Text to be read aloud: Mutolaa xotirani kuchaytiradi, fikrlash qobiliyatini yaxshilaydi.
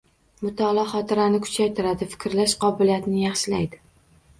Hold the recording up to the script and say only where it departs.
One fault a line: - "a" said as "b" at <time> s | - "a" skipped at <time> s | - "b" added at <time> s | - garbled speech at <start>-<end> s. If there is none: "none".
none